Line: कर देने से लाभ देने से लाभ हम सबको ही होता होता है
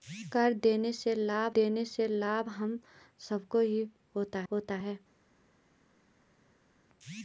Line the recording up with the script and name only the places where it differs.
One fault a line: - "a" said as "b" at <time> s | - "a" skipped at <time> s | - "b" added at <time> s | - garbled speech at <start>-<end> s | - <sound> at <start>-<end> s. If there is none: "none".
none